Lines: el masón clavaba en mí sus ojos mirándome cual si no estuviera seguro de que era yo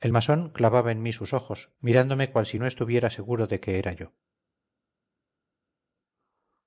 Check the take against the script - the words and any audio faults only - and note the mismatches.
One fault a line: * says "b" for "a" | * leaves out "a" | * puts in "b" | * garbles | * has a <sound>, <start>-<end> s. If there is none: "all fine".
all fine